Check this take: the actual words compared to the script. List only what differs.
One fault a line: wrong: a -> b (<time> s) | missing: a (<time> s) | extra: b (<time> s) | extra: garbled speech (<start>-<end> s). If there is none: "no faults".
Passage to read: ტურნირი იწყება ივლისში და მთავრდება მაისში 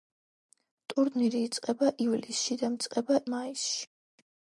wrong: მთავრდება -> იწყება (2.8 s)